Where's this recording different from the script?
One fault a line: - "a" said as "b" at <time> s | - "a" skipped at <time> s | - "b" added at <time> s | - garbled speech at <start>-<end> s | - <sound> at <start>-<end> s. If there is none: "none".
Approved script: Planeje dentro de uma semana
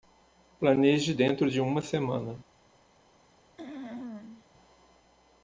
- throat clearing at 3.6-4.5 s